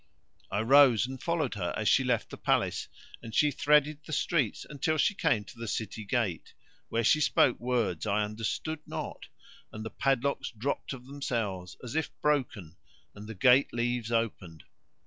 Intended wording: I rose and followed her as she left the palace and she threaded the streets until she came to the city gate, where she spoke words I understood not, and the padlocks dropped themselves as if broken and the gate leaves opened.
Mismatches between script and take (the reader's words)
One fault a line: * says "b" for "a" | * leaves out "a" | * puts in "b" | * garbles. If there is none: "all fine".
* puts in "of"